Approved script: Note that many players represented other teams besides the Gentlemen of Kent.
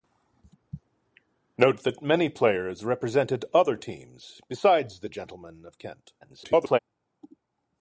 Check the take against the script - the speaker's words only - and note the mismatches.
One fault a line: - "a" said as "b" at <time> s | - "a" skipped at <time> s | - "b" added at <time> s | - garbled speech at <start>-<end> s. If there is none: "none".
- garbled speech at 6.2-6.8 s